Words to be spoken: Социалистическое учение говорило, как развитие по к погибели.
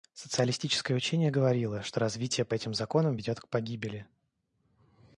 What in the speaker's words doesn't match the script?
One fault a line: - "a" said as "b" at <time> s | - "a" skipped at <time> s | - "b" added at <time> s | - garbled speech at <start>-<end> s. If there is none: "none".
- "как" said as "что" at 1.8 s
- "этим законам ведет" added at 2.5 s